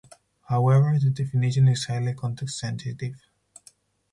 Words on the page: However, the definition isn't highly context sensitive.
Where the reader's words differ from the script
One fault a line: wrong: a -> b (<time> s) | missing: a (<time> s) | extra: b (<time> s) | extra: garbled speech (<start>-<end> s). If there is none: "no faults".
wrong: isn't -> is (1.7 s)